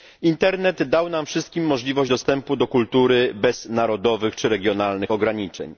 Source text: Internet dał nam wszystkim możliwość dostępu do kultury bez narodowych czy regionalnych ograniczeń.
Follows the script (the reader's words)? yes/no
yes